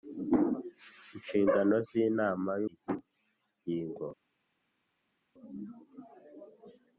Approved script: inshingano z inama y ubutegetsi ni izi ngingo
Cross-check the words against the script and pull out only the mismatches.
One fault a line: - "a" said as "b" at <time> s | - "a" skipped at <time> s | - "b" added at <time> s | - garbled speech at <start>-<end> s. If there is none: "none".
- "ubutegetsi ni" skipped at 2.6 s